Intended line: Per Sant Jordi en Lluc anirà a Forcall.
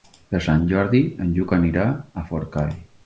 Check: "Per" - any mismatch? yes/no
no